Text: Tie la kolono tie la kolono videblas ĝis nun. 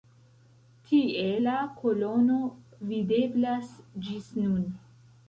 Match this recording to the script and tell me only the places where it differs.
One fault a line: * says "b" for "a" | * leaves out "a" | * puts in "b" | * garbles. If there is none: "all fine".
* leaves out "tie la kolono"